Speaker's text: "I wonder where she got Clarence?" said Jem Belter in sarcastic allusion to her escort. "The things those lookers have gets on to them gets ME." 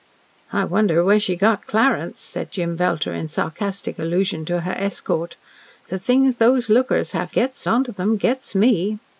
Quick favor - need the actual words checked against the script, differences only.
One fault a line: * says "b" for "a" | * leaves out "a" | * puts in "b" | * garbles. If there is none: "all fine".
all fine